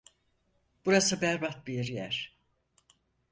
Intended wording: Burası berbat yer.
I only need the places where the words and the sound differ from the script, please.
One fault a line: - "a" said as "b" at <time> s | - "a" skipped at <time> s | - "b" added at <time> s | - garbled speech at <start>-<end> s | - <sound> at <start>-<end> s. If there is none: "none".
- "bir" added at 1.7 s